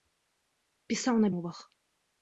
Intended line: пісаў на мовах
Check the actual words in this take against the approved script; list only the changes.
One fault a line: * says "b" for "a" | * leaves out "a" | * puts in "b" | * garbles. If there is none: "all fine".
all fine